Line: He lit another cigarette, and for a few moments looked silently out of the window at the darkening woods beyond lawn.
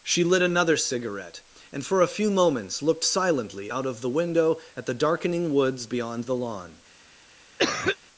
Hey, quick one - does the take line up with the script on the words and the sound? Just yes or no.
no